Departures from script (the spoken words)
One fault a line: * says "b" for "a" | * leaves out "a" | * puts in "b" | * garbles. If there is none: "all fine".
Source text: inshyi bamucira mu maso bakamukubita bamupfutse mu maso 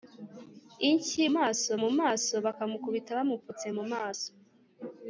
* says "maso" for "bamucira"